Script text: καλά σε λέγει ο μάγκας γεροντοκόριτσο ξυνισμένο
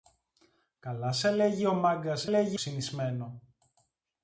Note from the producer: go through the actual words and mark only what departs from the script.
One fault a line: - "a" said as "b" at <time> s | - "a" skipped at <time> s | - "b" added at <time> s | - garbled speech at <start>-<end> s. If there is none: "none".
- "γεροντοκόριτσο" said as "λέγει" at 2.3 s